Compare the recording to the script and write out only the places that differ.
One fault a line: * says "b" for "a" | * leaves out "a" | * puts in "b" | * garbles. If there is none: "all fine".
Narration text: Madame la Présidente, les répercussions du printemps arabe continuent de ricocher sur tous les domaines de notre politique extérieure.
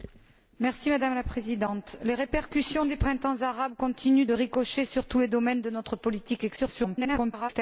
* garbles